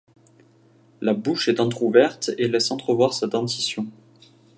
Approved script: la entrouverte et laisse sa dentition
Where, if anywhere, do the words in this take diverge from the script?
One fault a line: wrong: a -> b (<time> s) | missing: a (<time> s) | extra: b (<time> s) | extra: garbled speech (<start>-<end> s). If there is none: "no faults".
extra: bouche est (1.1 s)
extra: entrevoir (2.7 s)